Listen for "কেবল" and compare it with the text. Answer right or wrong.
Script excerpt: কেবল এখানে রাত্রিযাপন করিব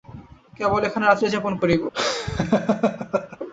right